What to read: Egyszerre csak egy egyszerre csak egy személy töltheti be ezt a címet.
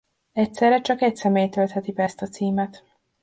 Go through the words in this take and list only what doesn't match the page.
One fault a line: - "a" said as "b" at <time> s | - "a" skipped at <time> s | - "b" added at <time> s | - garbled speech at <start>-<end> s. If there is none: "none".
- "egyszerre csak egy" skipped at 1.1 s